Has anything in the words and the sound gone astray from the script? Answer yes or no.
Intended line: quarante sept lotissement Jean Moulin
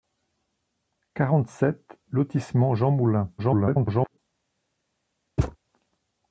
yes